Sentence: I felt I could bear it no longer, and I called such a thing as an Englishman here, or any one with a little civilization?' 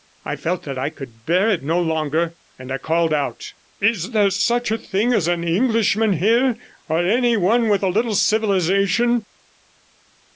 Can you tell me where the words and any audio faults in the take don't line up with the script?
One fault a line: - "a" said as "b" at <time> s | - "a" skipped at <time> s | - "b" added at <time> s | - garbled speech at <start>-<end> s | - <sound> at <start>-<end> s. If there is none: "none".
- "that" added at 0.6 s
- "out Is there" added at 3.1 s